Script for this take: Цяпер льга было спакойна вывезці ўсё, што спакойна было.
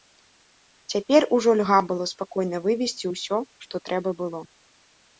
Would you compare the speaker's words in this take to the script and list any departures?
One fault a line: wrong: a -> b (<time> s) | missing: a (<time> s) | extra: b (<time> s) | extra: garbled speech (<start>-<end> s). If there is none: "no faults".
extra: ужо (1.4 s)
wrong: спакойна -> трэба (3.9 s)